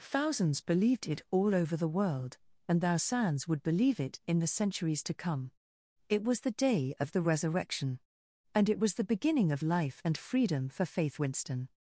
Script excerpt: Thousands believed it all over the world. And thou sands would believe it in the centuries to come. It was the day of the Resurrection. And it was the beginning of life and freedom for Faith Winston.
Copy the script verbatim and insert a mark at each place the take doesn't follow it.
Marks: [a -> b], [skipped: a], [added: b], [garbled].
Thousands believed it all over the world. And thou sands would believe it in the centuries to come. It was the day of the Resurrection. And it was the beginning of life and freedom for Faith Winston.